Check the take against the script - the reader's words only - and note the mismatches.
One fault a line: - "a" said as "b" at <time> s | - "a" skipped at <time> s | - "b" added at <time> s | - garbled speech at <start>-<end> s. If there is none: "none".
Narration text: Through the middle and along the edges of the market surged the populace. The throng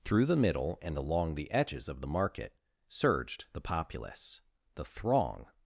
none